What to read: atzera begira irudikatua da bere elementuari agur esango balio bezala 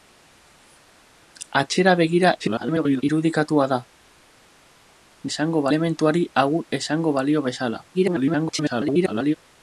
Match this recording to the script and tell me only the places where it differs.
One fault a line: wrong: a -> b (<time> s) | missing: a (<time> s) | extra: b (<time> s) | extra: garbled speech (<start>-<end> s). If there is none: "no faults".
extra: garbled speech (2.4-3.0 s)
wrong: bere -> esango (5.3 s)
extra: garbled speech (7.9-9.4 s)